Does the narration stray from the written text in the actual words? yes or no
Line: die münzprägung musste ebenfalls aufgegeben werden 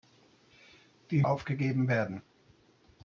yes